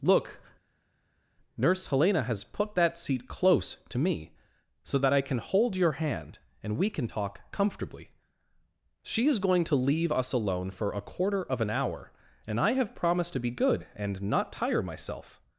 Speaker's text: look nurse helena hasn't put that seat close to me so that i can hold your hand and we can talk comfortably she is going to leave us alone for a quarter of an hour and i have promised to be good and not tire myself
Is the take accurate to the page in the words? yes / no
no